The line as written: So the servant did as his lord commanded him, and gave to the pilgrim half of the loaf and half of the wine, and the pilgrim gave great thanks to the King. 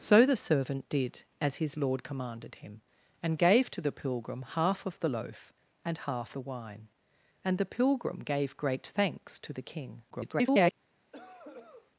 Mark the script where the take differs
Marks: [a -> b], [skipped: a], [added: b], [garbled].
So the servant did as his lord commanded him, and gave to the pilgrim half of the loaf and half [skipped: of] the wine, and the pilgrim gave great thanks to the King. [garbled]